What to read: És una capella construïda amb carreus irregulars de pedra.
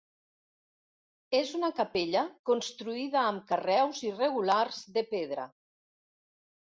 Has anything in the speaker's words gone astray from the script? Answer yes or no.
no